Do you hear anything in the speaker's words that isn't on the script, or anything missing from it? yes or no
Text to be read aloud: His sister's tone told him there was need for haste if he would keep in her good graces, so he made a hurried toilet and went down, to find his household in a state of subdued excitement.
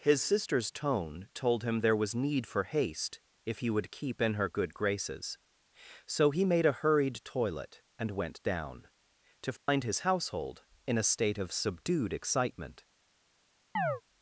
no